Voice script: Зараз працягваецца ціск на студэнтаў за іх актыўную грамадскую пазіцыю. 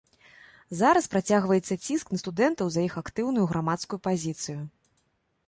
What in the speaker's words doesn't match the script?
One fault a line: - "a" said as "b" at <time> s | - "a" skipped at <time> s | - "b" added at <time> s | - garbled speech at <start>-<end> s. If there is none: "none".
none